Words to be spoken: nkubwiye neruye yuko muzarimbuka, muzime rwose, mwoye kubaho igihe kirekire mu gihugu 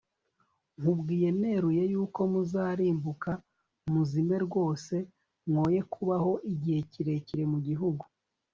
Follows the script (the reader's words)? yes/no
yes